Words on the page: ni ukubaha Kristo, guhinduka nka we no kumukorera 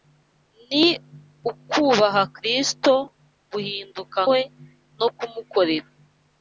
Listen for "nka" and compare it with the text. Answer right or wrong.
wrong